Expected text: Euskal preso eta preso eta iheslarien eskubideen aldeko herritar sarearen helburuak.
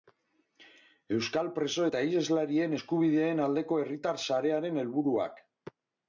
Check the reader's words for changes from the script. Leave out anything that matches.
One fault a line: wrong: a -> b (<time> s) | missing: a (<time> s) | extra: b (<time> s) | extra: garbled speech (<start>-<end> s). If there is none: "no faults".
missing: preso eta (2.0 s)